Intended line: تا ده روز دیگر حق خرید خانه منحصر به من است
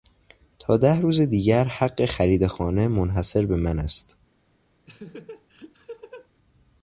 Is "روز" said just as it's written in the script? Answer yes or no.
yes